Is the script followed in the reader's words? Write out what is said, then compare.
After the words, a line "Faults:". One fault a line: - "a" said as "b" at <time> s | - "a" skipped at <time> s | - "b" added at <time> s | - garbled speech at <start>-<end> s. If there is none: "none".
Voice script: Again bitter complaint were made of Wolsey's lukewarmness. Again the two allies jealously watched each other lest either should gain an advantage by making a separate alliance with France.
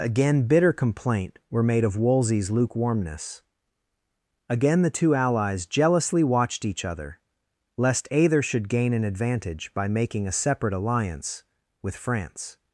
Again bitter complaint were made of Wolsey's lukewarmness. Again the two allies jealously watched each other lest either should gain an advantage by making a separate alliance with France.
Faults:
none